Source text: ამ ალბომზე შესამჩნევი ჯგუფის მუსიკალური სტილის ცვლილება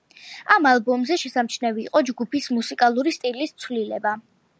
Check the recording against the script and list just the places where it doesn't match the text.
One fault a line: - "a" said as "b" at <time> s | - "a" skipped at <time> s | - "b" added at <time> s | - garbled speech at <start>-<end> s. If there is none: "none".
- "იყო" added at 1.9 s